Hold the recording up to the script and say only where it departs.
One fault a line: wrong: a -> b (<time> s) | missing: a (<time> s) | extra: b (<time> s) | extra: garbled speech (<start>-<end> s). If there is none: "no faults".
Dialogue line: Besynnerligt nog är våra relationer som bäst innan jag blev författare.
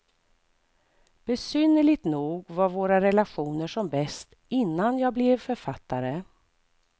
wrong: är -> var (2.5 s)